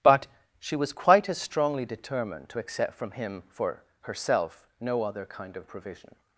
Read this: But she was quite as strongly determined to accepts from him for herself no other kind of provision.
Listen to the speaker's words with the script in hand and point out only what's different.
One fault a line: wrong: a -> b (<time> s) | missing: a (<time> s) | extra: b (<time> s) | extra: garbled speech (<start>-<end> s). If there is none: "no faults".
wrong: accepts -> accept (2.6 s)